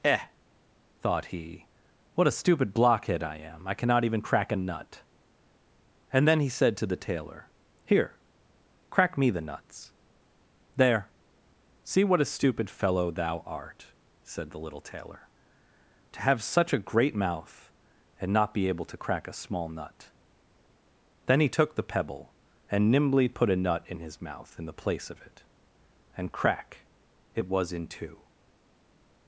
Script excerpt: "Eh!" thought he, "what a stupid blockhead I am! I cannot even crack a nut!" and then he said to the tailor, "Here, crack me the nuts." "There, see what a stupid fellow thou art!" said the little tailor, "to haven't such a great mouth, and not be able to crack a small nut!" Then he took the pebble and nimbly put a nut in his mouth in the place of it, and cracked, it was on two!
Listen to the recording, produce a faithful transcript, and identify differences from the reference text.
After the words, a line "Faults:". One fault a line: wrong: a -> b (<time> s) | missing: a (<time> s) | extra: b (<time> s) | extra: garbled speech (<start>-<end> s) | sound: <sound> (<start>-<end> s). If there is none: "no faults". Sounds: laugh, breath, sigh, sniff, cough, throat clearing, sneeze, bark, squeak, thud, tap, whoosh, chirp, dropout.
"Eh!" thought he, "what a stupid blockhead I am! I cannot even crack a nut!" and then he said to the tailor, "Here, crack me the nuts." "There, see what a stupid fellow thou art!" said the little tailor, "to have such a great mouth, and not be able to crack a small nut!" Then he took the pebble and nimbly put a nut in his mouth in the place of it, and crack, it was in two!
Faults:
wrong: haven't -> have (16.2 s)
wrong: cracked -> crack (26.3 s)
wrong: on -> in (27.7 s)